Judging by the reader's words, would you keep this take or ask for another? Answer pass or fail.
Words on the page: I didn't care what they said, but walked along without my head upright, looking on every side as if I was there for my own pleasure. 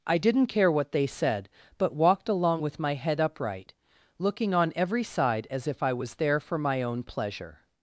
fail